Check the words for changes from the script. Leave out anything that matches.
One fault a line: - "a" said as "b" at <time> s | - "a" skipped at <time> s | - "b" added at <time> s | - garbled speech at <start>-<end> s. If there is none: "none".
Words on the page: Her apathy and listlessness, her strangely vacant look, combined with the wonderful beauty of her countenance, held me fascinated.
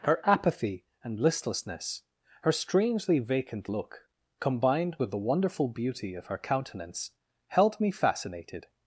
none